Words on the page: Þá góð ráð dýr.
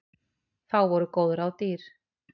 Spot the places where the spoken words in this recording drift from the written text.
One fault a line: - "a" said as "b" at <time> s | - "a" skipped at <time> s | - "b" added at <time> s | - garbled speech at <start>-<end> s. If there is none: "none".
- "voru" added at 0.9 s